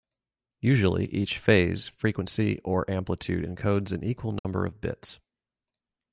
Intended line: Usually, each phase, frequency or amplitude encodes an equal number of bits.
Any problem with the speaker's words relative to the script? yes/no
no